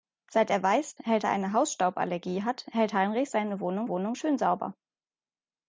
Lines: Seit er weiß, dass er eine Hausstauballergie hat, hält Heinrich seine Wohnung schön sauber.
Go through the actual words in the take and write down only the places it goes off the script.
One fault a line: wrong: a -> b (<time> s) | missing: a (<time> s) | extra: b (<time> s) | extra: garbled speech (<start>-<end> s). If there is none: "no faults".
wrong: dass -> hält (1.0 s)
extra: Wohnung (3.9 s)